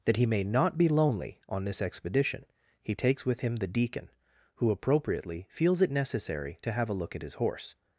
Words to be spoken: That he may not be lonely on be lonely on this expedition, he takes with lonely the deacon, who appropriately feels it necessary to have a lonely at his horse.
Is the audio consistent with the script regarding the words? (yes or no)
no